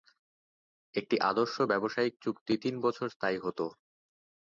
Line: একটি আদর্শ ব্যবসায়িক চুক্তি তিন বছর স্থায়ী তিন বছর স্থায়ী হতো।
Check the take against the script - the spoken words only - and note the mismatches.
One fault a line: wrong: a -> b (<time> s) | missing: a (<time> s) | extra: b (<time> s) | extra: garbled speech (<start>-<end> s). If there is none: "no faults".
missing: তিন বছর স্থায়ী (3.4 s)